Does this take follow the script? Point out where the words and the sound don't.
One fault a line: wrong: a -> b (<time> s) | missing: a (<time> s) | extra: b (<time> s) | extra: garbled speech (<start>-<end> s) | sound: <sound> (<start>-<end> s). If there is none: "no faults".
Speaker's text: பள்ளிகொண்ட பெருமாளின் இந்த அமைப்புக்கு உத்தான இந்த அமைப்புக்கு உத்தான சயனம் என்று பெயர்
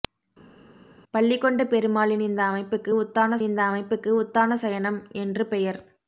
no faults